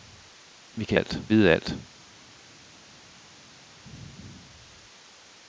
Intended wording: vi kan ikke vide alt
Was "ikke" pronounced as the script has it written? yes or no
no